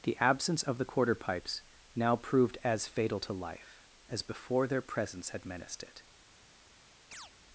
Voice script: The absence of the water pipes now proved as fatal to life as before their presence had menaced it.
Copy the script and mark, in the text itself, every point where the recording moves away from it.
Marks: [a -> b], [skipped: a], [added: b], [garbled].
The absence of the [water -> quarter] pipes now proved as fatal to life as before their presence had menaced it.